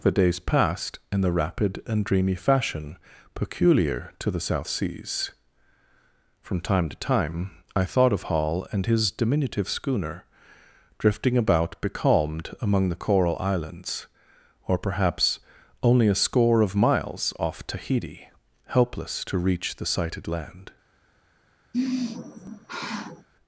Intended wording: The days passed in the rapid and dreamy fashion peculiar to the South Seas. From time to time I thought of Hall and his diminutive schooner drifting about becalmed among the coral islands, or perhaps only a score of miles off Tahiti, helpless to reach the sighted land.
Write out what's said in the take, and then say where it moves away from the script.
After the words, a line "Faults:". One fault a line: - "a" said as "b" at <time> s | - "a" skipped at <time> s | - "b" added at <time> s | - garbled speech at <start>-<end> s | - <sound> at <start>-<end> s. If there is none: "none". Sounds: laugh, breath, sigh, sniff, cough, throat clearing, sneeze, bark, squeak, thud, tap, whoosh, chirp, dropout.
The days passed in the rapid and dreamy fashion peculiar to the South Seas. From time to time I thought of Hall and his diminutive schooner drifting about becalmed among the coral islands, or perhaps only a score of miles off Tahiti, helpless to reach the sighted land.
Faults:
- sigh at 21.7-23.3 s